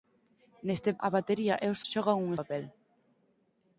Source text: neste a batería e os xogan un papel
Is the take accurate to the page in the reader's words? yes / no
yes